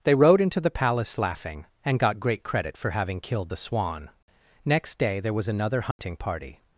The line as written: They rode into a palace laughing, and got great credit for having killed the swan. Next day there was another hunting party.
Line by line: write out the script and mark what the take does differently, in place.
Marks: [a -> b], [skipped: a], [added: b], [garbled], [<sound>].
They rode into [a -> the] palace laughing, and got great credit for having killed the swan. Next day there was another hunting [dropout] party.